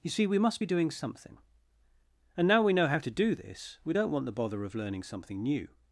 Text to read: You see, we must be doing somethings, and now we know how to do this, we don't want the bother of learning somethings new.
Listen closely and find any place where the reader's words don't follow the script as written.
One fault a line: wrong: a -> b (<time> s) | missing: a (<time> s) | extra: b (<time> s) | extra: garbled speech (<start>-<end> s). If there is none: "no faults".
wrong: somethings -> something (0.9 s)
wrong: somethings -> something (5.0 s)